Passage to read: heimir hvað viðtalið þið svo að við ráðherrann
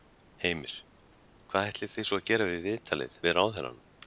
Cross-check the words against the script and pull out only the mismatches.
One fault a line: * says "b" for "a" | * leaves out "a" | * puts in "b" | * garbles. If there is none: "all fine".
* says "ætlið" for "viðtalið"
* puts in "gera við viðtalið"